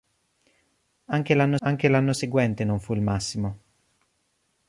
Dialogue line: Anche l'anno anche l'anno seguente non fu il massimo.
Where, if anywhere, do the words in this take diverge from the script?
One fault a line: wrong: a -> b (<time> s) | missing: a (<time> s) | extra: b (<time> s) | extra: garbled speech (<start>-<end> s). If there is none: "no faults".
no faults